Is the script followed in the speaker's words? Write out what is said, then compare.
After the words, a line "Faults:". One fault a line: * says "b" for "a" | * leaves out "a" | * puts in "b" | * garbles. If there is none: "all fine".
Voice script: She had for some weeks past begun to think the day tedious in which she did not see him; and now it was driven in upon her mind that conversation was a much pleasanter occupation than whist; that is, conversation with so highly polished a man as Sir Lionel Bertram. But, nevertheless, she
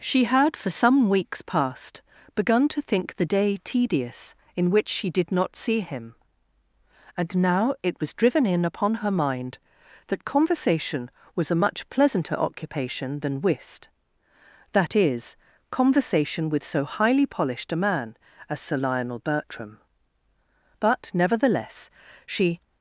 She had for some weeks past begun to think the day tedious in which she did not see him; and now it was driven in upon her mind that conversation was a much pleasanter occupation than whist; that is, conversation with so highly polished a man as Sir Lionel Bertram. But, nevertheless, she
Faults:
all fine